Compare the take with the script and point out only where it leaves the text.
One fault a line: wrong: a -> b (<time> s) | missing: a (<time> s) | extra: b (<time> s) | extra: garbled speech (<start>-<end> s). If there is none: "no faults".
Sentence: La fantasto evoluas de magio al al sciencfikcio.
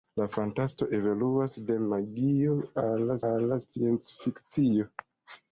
no faults